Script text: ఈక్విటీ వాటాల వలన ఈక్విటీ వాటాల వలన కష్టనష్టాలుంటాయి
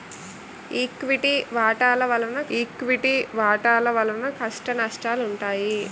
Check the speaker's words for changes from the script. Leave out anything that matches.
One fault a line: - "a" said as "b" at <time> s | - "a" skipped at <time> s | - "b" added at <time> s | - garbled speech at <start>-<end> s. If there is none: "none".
none